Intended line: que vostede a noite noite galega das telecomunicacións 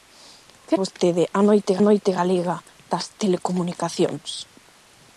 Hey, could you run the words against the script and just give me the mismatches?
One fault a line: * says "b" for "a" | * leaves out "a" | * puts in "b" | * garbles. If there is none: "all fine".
all fine